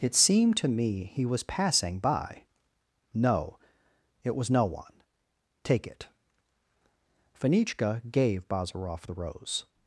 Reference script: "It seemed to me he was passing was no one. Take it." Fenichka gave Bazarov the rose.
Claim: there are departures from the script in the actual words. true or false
true